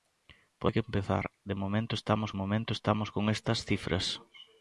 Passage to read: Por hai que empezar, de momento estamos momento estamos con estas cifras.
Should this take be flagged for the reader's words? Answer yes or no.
no